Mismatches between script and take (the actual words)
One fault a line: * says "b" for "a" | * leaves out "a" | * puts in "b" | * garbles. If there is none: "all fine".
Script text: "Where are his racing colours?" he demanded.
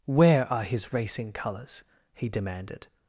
all fine